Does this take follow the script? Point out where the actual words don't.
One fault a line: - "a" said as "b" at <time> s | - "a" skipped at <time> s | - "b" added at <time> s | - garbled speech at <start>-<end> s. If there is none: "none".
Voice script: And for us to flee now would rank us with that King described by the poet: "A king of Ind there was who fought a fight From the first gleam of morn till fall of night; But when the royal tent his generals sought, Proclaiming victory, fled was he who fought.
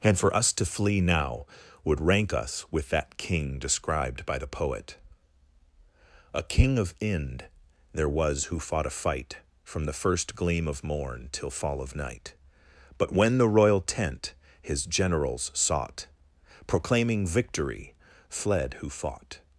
- "was he" skipped at 18.8 s